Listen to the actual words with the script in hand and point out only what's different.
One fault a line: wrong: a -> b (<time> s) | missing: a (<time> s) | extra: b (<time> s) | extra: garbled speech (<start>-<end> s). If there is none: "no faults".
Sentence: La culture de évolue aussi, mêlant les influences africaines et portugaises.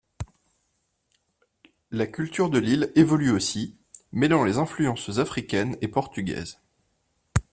extra: l'île (2.6 s)